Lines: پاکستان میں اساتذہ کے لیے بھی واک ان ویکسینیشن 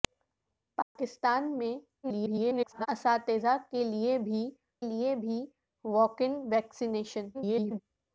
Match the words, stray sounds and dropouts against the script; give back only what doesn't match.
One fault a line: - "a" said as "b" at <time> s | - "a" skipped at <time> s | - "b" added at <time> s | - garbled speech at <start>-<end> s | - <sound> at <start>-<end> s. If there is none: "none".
- dropout at 0.8-1.0 s
- garbled speech at 2.0-2.9 s
- "لیے بھی" added at 4.8 s
- garbled speech at 7.3-7.8 s